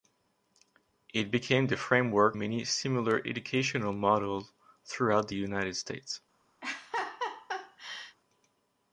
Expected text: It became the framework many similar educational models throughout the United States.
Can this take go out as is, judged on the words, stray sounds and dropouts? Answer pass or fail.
fail